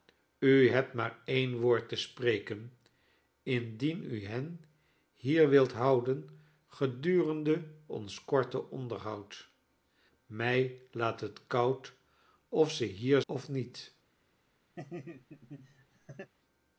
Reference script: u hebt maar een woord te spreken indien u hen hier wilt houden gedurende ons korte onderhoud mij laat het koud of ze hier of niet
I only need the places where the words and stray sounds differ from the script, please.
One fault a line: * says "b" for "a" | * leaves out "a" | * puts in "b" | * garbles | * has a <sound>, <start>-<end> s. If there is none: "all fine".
* has a laugh, 14.8-16.3 s